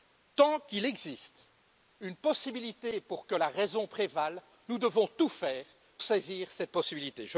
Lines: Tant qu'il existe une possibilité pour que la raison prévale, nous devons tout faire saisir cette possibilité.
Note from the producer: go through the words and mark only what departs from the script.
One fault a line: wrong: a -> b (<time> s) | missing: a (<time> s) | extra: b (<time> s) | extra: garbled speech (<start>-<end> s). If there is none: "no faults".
no faults